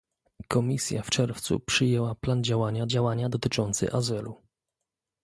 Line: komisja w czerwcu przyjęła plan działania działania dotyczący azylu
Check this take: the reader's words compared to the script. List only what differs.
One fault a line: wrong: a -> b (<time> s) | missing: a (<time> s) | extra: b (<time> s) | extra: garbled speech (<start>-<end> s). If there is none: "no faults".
no faults